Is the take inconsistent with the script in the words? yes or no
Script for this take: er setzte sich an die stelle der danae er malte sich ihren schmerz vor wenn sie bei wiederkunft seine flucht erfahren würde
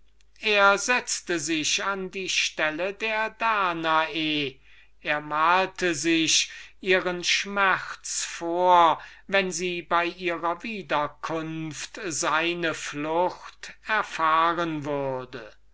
yes